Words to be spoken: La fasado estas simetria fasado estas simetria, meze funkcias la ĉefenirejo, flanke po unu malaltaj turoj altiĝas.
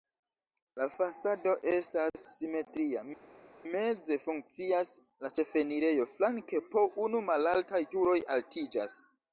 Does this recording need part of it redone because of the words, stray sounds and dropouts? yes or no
yes